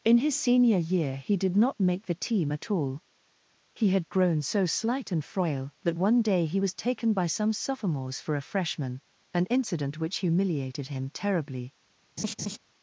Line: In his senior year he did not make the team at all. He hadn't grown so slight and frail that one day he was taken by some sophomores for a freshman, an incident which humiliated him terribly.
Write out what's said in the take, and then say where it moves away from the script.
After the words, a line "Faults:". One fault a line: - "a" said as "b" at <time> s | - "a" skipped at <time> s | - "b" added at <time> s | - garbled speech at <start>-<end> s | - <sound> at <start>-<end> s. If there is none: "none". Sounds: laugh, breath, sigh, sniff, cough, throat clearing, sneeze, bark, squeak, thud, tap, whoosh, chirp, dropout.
In his senior year he did not make the team at all. He had grown so slight and frail that one day he was taken by some sophomores for a freshman, an incident which humiliated him terribly.
Faults:
- "hadn't" said as "had" at 3.9 s
- laugh at 12.2-12.6 s